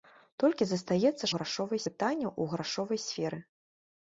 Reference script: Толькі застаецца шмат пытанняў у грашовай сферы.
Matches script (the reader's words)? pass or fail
fail